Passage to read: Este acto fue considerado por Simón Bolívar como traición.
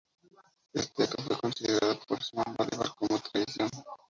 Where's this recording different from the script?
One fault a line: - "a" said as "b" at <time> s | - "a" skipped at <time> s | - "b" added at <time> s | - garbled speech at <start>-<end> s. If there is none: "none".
none